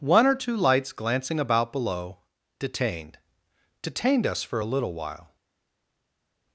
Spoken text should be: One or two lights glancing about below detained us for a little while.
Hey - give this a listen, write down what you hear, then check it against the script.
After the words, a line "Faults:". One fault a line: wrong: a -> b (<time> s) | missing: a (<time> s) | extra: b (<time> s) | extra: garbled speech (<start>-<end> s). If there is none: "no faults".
One or two lights glancing about below detained detained us for a little while.
Faults:
extra: detained (3.8 s)